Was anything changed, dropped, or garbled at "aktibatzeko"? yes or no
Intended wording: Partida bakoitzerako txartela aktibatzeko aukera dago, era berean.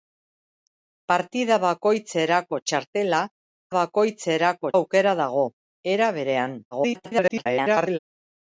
yes